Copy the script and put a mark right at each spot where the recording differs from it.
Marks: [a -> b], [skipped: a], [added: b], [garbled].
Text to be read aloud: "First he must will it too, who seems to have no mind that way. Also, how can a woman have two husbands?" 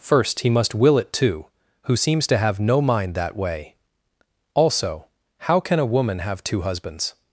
"First he must will it too, who seems to have no mind that way. Also, how can a woman have two husbands?"